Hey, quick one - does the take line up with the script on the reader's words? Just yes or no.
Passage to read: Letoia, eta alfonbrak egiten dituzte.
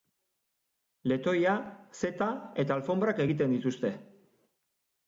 no